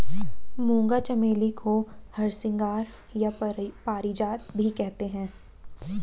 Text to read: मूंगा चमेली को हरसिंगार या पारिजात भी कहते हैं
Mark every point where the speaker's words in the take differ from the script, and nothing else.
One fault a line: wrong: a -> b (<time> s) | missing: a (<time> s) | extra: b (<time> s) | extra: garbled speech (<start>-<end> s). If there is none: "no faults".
no faults